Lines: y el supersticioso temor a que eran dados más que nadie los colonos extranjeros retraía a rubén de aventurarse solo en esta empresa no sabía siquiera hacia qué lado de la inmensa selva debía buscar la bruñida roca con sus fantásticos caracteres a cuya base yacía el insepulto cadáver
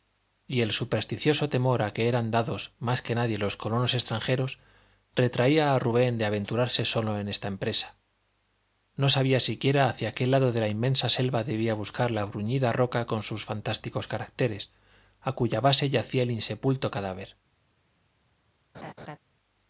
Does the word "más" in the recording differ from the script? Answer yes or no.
no